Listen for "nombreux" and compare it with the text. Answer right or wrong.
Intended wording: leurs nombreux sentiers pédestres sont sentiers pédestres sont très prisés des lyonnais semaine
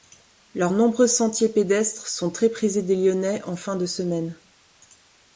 right